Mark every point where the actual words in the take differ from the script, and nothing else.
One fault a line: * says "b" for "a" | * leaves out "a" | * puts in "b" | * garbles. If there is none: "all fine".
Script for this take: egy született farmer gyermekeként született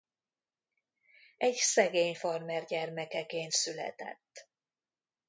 * says "szegény" for "született"